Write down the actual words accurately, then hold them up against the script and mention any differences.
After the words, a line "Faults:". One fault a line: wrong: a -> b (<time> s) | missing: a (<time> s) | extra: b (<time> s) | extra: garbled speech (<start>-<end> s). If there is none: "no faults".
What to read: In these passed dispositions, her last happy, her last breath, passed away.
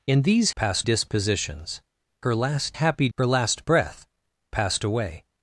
In these passed dispositions, her last happy, her last breath, passed away.
Faults:
no faults